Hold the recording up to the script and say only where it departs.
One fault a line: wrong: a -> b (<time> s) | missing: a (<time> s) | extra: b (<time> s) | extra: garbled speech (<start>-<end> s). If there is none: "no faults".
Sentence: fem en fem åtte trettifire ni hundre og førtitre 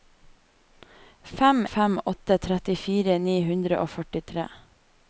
missing: en (1.7 s)